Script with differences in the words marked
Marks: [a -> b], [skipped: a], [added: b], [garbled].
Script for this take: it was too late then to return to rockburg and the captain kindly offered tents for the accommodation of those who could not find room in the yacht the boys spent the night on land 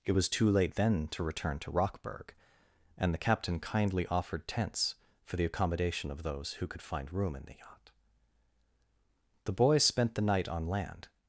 it was too late then to return to rockburg and the captain kindly offered tents for the accommodation of those who could [skipped: not] find room in the yacht the boys spent the night on land